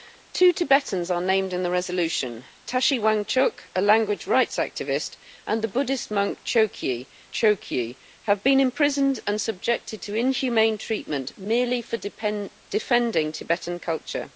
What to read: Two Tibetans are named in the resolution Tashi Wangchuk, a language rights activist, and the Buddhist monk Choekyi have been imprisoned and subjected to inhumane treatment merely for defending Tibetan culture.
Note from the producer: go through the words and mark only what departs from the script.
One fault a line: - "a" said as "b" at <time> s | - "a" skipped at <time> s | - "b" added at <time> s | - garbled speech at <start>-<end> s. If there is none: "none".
- "Choekyi" added at 7.3 s